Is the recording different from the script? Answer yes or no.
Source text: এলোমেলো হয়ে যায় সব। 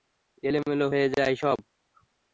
no